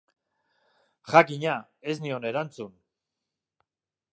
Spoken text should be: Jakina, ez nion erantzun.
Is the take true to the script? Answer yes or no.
yes